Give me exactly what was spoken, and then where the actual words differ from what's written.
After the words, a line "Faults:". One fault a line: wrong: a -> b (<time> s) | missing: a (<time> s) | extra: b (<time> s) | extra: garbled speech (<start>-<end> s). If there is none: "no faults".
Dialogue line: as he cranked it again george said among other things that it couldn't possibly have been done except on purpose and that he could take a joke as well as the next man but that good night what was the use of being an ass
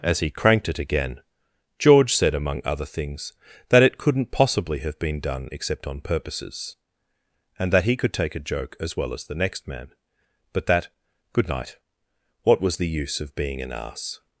as he cranked it again george said among other things that it couldn't possibly have been done except on purposes and that he could take a joke as well as the next man but that good night what was the use of being an ass
Faults:
wrong: purpose -> purposes (6.0 s)